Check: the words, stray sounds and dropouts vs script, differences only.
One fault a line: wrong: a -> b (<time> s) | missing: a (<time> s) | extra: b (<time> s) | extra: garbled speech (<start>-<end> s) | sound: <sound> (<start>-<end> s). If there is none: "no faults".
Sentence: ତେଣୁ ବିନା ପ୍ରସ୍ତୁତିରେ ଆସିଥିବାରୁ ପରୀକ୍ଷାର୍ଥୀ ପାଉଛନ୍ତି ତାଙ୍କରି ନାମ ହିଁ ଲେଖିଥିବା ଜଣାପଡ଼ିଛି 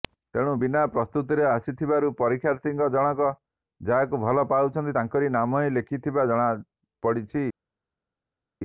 extra: ଜଣକ ଯାହାକୁ ଭଲ (2.9 s)